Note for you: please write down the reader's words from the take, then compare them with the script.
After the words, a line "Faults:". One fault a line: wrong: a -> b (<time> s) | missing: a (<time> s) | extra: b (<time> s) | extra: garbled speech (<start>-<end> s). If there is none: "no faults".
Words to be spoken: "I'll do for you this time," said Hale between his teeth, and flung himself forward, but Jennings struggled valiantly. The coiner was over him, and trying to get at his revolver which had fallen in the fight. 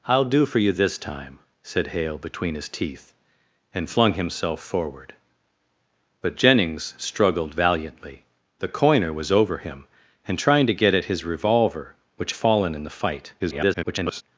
"I'll do for you this time," said Hale between his teeth, and flung himself forward, but Jennings struggled valiantly. The coiner was over him, and trying to get at his revolver which fallen in the fight. [garbled]
Faults:
missing: had (12.3 s)
extra: garbled speech (13.4-14.2 s)